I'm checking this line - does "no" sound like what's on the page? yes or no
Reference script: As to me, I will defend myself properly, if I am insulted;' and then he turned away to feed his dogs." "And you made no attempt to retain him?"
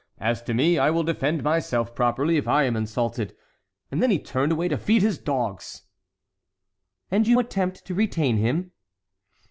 no